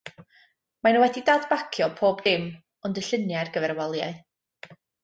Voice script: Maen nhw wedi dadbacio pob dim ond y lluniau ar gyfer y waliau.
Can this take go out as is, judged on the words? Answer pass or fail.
pass